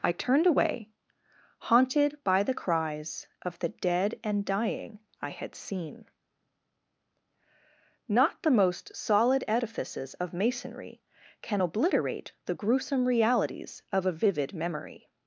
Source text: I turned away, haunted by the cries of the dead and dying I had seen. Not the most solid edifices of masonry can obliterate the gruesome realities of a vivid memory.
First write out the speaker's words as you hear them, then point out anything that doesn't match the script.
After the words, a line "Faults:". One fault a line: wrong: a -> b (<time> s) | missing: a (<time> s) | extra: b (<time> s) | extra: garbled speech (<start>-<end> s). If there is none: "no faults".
I turned away, haunted by the cries of the dead and dying I had seen. Not the most solid edifices of masonry can obliterate the gruesome realities of a vivid memory.
Faults:
no faults